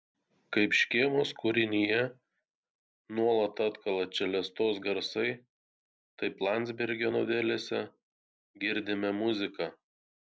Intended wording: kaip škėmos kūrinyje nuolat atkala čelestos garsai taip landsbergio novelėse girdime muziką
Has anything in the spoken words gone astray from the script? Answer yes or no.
no